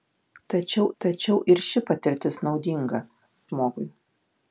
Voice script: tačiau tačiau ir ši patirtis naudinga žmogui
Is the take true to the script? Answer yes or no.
yes